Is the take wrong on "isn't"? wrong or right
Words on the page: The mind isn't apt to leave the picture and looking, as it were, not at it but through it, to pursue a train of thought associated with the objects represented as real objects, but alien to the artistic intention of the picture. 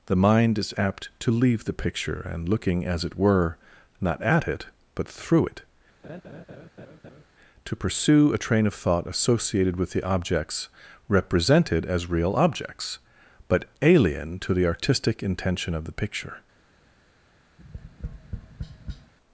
wrong